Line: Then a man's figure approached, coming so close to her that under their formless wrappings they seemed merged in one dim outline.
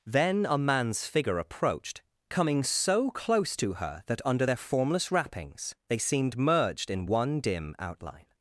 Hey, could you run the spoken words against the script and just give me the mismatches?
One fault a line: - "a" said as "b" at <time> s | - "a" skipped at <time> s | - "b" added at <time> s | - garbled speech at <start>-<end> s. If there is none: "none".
none